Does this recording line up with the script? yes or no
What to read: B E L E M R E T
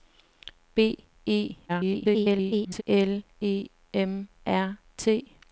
no